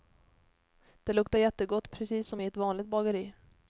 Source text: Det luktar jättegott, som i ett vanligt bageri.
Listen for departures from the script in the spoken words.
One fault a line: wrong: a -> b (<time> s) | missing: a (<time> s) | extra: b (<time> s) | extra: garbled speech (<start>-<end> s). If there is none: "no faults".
extra: precis (1.9 s)